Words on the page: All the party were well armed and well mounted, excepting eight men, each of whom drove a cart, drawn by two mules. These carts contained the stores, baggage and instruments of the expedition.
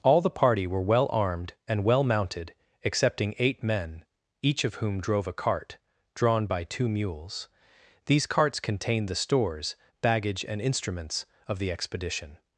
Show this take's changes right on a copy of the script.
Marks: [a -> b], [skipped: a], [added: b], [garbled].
All the party were well armed and well mounted, excepting eight men, each of whom drove a cart, drawn by two mules. These carts contained the stores, baggage and instruments of the expedition.